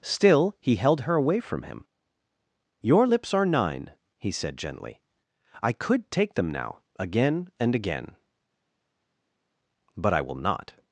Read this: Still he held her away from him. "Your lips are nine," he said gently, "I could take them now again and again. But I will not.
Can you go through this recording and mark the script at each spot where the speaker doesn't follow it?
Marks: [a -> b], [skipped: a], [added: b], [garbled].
Still he held her away from him. "Your lips are nine," he said gently, "I could take them now again and again. But I will not.